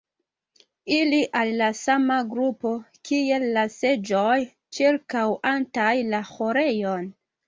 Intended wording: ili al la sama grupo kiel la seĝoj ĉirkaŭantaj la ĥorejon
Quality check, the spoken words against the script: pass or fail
pass